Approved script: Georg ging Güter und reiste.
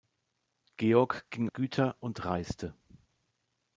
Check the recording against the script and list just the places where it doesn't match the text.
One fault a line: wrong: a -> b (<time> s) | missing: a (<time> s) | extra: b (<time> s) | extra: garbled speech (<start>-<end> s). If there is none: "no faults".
no faults